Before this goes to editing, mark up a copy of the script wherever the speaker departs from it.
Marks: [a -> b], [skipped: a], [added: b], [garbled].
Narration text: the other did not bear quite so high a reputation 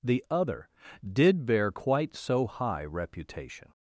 the other did [skipped: not] bear quite so high [skipped: a] reputation